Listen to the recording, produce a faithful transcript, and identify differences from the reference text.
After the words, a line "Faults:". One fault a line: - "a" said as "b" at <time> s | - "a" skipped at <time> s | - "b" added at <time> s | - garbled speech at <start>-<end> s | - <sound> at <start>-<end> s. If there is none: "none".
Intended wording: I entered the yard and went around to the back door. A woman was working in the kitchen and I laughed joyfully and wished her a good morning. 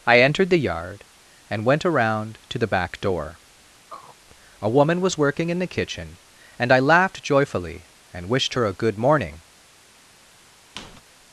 I entered the yard and went around to the back door. A woman was working in the kitchen and I laughed joyfully and wished her a good morning.
Faults:
- throat clearing at 3.9-4.2 s
- squeak at 10.7-11.0 s